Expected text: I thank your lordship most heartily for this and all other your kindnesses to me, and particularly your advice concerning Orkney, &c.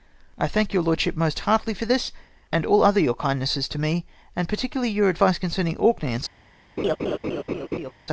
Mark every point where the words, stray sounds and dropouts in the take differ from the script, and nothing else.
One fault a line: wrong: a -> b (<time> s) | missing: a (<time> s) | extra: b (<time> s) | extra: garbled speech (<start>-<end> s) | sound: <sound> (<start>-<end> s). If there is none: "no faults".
sound: laugh (6.8-7.9 s)